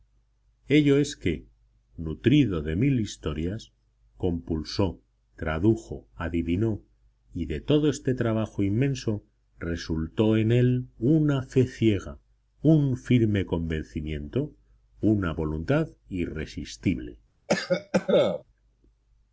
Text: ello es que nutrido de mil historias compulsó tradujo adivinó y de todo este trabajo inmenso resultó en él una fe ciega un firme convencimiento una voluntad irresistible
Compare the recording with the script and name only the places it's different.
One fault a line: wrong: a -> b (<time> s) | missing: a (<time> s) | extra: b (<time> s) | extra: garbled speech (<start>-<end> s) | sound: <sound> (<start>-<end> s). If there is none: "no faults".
sound: cough (17.5-18.4 s)